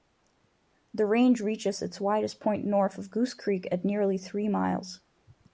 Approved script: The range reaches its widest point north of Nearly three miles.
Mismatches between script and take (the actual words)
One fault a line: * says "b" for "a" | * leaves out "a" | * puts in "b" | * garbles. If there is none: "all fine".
* puts in "Goose Creek at"